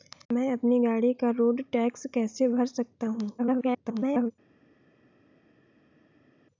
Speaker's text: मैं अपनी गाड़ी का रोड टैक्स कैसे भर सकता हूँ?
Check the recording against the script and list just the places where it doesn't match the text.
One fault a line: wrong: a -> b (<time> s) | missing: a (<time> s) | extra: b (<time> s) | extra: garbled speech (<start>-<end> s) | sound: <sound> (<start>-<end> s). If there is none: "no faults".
extra: garbled speech (3.4-4.3 s)